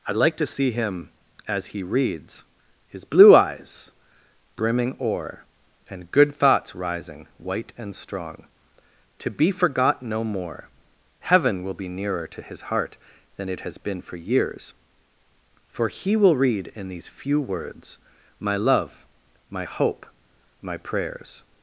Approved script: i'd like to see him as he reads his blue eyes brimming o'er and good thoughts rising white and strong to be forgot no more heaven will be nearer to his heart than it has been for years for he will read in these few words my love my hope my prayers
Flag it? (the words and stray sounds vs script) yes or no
no